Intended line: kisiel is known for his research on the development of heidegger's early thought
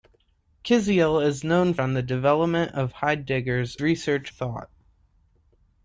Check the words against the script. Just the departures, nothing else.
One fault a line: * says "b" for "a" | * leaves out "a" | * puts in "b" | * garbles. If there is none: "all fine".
* leaves out "for his research"
* says "research" for "early"